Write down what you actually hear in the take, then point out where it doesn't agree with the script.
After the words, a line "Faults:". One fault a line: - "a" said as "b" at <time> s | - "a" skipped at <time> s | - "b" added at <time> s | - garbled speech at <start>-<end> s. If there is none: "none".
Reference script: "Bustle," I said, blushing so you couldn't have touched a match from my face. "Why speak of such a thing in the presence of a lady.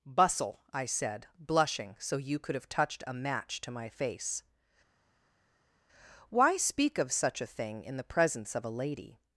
"Bustle," I said, blushing so you could have touched a match to my face. "Why speak of such a thing in the presence of a lady.
Faults:
- "couldn't" said as "could" at 2.4 s
- "from" said as "to" at 3.6 s